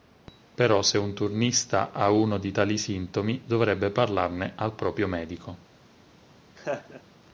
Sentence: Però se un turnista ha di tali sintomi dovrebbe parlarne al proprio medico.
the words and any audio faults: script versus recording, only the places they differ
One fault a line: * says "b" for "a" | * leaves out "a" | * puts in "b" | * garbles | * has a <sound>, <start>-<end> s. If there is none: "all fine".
* puts in "uno"
* has a laugh, 6.6-7.0 s